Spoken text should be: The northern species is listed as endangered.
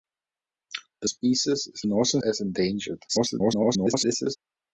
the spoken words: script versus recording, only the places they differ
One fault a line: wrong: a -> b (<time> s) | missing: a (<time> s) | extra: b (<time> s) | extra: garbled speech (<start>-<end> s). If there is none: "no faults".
missing: northern (1.1 s)
wrong: listed -> northern (1.9 s)
extra: garbled speech (3.1-4.4 s)